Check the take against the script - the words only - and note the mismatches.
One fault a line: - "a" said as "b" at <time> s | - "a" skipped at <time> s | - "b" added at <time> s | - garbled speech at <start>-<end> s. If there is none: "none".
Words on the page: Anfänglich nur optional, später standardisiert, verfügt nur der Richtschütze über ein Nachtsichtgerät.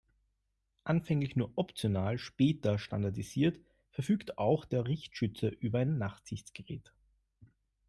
- "nur" said as "auch" at 4.4 s